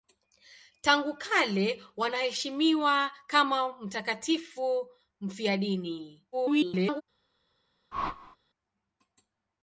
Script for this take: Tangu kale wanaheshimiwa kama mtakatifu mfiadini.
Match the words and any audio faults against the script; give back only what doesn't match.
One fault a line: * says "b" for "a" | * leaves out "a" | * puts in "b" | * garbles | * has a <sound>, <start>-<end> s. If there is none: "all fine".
* garbles
* has a whoosh, 7.9-8.4 s